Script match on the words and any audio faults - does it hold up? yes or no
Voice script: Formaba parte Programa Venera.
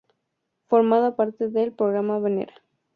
no